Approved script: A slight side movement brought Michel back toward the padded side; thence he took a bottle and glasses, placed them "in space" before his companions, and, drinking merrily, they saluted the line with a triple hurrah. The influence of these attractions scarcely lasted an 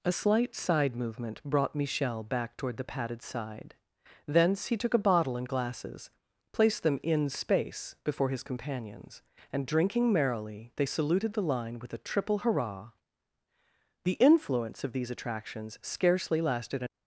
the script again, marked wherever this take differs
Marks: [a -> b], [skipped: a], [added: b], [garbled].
A slight side movement brought Michel back toward the padded side; thence he took a bottle and glasses, placed them "in space" before his companions, and, drinking merrily, they saluted the line with a triple hurrah. The influence of these attractions scarcely lasted an